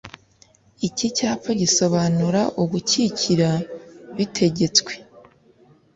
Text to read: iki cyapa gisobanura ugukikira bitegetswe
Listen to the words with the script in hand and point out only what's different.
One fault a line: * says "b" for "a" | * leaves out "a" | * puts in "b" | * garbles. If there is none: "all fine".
all fine